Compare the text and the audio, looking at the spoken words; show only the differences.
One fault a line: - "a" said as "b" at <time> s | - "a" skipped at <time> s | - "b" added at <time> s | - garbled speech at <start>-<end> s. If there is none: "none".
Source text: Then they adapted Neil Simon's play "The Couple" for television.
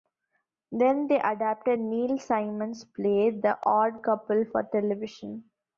- "Odd" added at 3.6 s